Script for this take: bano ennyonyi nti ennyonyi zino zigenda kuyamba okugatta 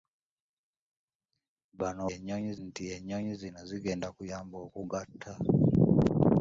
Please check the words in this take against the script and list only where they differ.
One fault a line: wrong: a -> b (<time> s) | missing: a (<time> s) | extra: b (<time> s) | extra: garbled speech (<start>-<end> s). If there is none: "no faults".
no faults